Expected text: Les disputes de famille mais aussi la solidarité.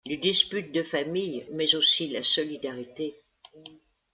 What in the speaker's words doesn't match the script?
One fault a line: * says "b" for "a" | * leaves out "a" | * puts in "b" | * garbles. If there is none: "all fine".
all fine